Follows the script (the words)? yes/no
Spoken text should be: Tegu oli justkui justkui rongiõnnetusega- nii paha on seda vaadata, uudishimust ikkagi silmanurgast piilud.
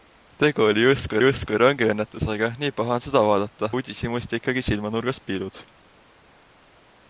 yes